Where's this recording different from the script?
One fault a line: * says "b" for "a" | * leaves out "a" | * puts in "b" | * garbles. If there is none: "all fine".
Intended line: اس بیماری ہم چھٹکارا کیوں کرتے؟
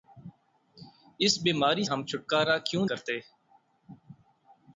all fine